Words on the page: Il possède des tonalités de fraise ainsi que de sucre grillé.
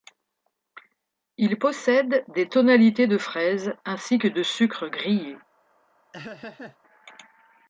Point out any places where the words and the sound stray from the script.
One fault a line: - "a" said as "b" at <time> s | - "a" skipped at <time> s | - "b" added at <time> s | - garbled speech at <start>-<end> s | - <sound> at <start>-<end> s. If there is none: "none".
- laugh at 6.1-6.8 s